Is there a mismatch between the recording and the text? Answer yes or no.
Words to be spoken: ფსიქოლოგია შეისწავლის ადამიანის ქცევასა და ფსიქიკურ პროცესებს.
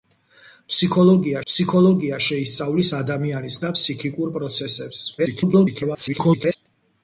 yes